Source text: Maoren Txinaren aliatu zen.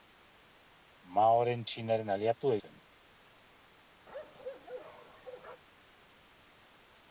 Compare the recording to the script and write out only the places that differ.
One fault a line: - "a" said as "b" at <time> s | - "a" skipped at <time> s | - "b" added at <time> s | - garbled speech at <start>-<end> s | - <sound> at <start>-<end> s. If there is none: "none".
- bark at 4.1-5.6 s